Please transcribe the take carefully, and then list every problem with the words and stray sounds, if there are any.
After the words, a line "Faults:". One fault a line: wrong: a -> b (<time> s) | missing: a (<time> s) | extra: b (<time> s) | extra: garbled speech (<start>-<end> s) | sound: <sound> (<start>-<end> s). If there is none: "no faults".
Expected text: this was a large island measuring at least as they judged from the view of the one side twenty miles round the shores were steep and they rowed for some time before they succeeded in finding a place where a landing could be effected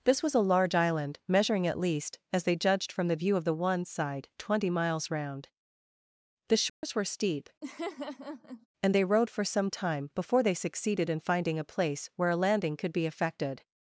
this was a large island measuring at least as they judged from the view of the one side twenty miles round the shores were steep and they rowed for some time before they succeeded in finding a place where a landing could be effected
Faults:
sound: dropout (6.7-6.8 s)
sound: laugh (7.6-8.7 s)